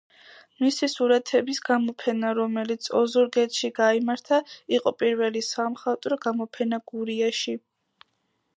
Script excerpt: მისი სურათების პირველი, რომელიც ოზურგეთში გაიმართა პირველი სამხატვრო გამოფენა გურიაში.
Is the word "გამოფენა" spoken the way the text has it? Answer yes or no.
yes